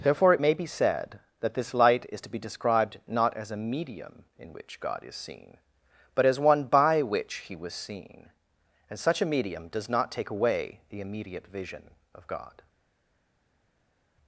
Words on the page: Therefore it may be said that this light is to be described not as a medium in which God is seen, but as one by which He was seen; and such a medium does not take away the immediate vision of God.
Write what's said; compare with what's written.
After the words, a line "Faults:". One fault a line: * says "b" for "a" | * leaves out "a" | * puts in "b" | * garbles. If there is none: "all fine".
Therefore it may be said that this light is to be described not as a medium in which God is seen, but as one by which He was seen; and such a medium does not take away the immediate vision of God.
Faults:
all fine